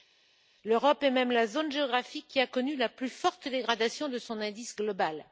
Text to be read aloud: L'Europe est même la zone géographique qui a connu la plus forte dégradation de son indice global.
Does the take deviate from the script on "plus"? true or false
false